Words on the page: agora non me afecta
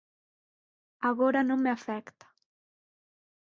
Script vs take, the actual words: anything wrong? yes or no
no